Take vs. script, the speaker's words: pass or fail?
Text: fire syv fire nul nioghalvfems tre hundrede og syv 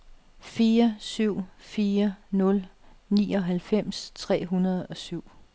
pass